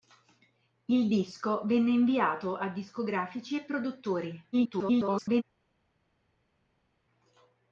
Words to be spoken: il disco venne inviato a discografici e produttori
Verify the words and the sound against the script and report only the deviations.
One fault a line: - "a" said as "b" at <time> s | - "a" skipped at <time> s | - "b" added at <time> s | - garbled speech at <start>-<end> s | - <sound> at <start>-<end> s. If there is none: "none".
- garbled speech at 4.5-5.4 s